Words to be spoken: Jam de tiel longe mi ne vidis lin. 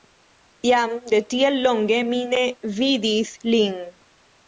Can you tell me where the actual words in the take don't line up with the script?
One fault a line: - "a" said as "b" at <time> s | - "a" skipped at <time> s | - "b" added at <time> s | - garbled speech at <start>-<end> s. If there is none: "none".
none